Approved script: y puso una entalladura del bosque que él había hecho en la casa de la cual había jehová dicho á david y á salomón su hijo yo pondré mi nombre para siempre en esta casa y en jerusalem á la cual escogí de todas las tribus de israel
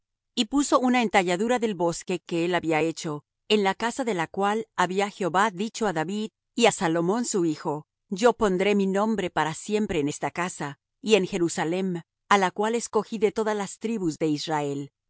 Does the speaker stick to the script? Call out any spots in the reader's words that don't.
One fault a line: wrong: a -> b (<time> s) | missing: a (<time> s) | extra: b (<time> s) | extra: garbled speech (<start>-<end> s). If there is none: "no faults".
no faults